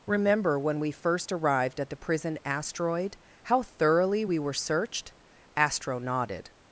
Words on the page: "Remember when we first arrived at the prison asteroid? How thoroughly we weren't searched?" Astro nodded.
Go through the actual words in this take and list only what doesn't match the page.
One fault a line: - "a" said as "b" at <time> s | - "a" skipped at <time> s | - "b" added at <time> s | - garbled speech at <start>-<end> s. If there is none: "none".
- "weren't" said as "were" at 4.4 s